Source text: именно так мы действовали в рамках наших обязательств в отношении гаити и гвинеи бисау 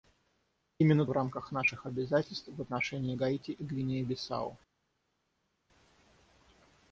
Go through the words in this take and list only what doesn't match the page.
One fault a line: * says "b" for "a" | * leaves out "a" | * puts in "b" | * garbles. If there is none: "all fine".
* leaves out "так мы действовали"